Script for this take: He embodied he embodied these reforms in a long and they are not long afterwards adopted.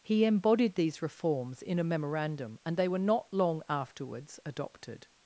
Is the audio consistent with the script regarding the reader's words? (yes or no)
no